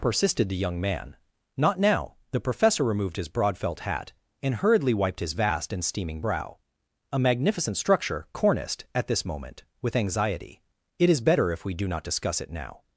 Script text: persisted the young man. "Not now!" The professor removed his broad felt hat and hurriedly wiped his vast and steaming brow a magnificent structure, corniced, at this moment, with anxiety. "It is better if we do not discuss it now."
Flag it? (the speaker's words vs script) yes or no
no